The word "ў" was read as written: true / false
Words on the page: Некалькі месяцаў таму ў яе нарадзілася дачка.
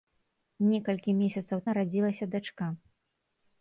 false